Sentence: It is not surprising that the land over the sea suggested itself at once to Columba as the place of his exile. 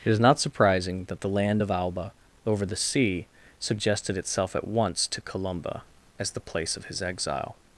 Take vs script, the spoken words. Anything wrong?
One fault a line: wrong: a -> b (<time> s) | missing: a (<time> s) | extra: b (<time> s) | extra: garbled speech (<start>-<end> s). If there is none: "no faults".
extra: of Alba (1.6 s)